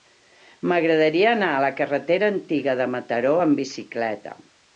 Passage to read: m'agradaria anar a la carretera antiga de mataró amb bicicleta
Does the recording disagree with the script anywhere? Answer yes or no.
no